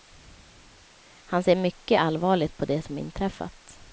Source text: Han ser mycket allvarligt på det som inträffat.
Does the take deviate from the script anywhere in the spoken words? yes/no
no